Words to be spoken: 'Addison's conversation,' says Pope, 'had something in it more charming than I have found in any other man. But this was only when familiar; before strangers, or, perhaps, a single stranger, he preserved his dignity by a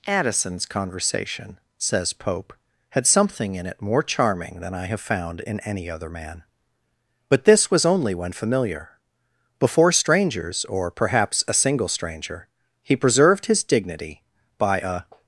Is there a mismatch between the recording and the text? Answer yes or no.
no